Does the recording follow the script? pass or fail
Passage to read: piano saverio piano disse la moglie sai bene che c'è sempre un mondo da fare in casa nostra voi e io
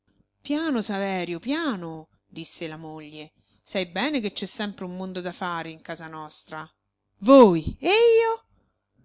pass